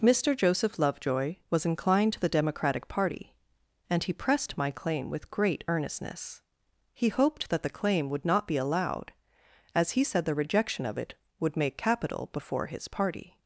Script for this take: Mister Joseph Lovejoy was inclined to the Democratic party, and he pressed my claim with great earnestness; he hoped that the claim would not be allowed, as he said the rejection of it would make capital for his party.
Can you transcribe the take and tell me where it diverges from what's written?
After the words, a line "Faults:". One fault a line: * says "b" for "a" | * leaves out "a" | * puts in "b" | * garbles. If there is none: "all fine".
Mister Joseph Lovejoy was inclined to the Democratic party, and he pressed my claim with great earnestness; he hoped that the claim would not be allowed, as he said the rejection of it would make capital before his party.
Faults:
* says "before" for "for"